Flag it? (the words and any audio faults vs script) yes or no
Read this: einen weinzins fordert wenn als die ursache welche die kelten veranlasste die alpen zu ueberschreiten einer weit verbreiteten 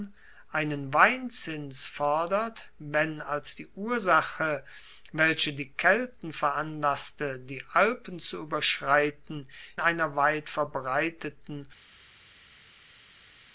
no